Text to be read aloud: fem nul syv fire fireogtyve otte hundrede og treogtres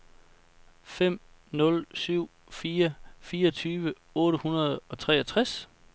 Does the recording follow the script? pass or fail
pass